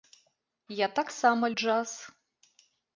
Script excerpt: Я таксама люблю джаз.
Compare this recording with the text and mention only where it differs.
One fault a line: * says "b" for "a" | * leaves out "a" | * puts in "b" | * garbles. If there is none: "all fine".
* leaves out "люблю"